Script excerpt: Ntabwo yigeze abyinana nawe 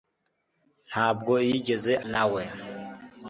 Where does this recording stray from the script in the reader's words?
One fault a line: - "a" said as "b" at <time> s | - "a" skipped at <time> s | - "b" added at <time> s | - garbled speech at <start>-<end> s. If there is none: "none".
- "abyinana" skipped at 1.9 s